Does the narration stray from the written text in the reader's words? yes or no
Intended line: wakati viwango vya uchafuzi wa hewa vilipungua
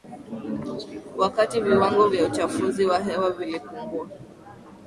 no